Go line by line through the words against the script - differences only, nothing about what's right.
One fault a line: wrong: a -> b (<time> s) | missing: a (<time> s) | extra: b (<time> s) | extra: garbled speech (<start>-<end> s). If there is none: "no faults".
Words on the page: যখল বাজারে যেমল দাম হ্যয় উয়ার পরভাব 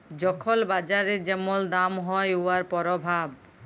no faults